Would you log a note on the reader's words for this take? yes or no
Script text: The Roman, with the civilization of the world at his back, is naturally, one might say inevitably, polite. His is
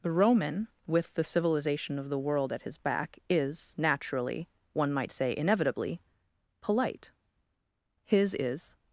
no